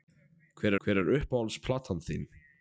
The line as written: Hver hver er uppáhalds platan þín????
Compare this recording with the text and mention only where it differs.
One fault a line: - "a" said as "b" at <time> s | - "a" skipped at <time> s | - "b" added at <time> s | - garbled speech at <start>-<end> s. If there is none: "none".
none